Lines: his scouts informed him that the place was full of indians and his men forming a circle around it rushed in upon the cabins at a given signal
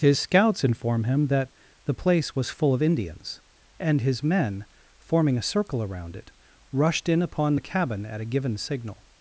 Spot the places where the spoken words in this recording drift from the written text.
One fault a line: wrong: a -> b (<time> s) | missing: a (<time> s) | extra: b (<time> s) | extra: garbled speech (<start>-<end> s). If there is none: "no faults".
wrong: informed -> inform (0.6 s)
wrong: cabins -> cabin (7.6 s)